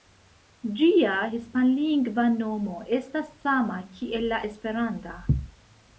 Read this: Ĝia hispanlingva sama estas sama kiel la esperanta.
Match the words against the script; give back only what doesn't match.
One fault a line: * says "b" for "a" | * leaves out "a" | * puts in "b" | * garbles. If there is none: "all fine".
* says "nomo" for "sama"